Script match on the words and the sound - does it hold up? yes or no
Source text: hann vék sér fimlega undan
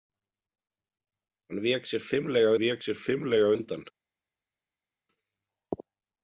no